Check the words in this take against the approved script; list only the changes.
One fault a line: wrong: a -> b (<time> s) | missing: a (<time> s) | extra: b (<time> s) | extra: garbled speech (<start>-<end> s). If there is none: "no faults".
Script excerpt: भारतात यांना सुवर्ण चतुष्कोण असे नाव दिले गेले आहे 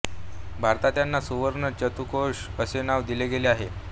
no faults